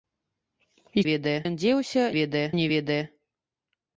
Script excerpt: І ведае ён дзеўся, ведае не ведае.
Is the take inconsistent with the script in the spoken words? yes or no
no